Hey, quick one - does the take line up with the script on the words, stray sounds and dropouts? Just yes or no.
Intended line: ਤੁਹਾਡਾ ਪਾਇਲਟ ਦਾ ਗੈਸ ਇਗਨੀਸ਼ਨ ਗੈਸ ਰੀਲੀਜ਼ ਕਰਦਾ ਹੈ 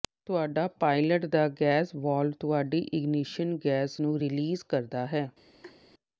no